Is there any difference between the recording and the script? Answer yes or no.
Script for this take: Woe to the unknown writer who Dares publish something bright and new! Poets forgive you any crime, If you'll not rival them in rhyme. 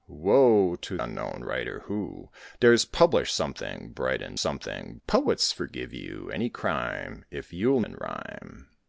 yes